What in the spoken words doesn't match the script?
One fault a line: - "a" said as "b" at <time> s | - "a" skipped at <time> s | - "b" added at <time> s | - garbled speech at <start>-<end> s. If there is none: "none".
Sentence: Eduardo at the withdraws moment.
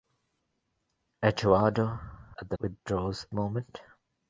none